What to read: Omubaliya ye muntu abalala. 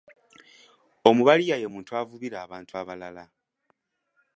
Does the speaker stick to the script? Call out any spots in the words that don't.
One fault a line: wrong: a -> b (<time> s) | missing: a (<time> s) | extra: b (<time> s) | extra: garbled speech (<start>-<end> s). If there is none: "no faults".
extra: avubira abantu (2.0 s)